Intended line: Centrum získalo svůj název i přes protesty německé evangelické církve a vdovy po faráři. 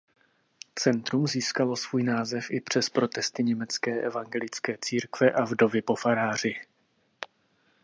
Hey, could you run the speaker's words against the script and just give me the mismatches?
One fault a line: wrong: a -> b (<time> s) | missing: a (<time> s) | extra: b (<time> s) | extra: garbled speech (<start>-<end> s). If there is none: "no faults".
no faults